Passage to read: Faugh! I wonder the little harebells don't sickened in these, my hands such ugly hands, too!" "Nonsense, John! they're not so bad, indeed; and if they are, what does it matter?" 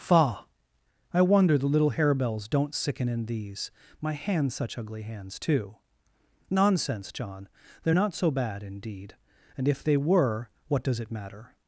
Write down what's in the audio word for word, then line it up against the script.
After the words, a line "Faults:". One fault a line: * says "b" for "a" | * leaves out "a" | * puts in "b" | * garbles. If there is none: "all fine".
Faugh! I wonder the little harebells don't sicken in these, my hands such ugly hands, too!" "Nonsense, John! they're not so bad, indeed; and if they were, what does it matter?"
Faults:
* says "sicken" for "sickened"
* says "were" for "are"